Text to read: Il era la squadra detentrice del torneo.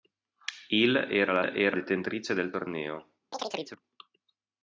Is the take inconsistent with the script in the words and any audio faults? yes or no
yes